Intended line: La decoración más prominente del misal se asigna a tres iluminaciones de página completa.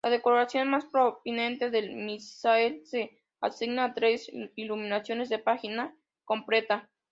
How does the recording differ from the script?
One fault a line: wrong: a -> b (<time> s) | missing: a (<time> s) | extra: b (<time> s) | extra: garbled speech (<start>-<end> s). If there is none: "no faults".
no faults